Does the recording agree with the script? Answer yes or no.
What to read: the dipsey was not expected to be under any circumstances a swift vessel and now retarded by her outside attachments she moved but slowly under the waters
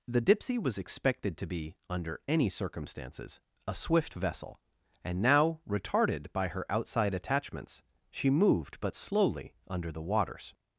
no